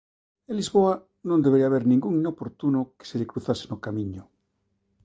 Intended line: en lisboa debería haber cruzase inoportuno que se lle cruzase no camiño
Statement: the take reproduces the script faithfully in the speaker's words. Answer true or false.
false